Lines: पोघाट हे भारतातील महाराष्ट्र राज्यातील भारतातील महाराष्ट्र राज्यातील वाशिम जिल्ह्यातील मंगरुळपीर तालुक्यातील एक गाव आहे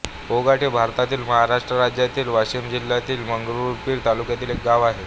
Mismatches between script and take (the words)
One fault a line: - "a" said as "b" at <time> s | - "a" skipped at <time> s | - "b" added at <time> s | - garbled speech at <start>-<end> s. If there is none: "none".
- "भारतातील महाराष्ट्र राज्यातील" skipped at 2.3 s